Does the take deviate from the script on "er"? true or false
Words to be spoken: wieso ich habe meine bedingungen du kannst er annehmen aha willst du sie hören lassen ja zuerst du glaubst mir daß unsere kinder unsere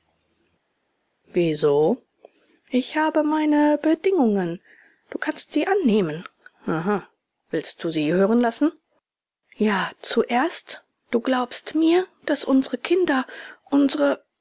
true